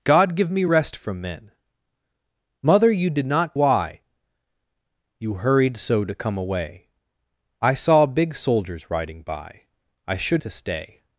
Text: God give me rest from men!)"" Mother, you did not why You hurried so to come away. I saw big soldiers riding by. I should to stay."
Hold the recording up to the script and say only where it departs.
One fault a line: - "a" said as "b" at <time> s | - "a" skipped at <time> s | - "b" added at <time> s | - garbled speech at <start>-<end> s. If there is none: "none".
none